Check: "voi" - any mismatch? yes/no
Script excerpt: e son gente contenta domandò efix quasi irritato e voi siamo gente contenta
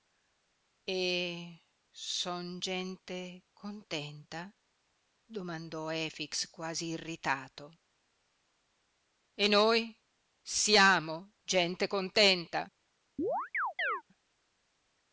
yes